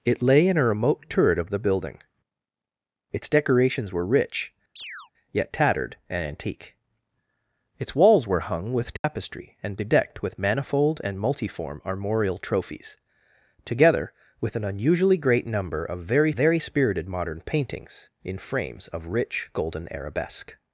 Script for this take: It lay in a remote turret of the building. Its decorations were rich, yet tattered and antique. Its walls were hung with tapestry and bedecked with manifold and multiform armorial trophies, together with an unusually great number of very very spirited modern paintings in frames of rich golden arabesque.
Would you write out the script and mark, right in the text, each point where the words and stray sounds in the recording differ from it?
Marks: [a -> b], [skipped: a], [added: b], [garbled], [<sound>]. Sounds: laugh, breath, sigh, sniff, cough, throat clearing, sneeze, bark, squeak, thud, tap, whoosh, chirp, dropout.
It lay in a remote turret of the building. Its decorations were rich, [chirp] yet tattered and antique. Its walls were hung with tapestry [dropout] and bedecked with manifold and multiform armorial trophies, together with an unusually great number of very very spirited modern paintings in frames of rich golden arabesque.